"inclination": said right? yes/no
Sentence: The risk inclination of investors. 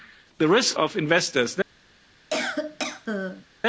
no